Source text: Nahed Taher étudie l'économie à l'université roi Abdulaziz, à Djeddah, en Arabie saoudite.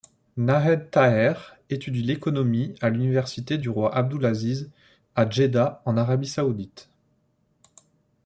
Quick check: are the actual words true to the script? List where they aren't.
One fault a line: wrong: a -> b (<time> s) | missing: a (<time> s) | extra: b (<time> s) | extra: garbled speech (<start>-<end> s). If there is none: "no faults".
extra: du (3.6 s)